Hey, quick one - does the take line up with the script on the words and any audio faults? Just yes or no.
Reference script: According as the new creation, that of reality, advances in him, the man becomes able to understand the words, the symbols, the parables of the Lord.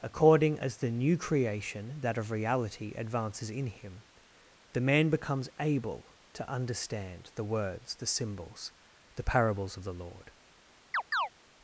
no